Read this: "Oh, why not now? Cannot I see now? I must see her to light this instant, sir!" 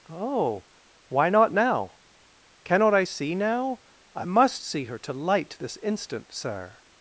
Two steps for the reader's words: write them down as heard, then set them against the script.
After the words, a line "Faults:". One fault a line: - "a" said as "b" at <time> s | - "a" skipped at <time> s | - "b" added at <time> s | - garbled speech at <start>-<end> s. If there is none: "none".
"Oh, why not now? Cannot I see now? I must see her to light this instant, sir!"
Faults:
none